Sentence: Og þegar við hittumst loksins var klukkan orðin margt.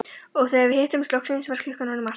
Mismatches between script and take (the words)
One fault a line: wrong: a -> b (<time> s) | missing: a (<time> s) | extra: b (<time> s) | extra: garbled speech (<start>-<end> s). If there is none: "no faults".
no faults